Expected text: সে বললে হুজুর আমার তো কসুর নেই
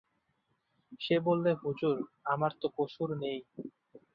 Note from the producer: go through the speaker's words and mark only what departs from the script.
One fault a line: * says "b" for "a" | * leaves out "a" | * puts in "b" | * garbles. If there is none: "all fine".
all fine